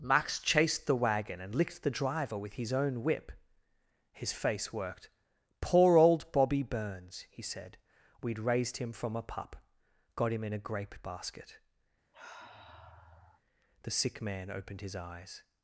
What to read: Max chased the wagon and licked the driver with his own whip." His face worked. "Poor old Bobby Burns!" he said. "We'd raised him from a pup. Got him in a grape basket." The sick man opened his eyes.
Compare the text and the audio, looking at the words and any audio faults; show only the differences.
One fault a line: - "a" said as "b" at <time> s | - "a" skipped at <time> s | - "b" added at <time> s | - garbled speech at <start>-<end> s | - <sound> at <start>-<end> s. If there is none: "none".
- sniff at 12.1-13.4 s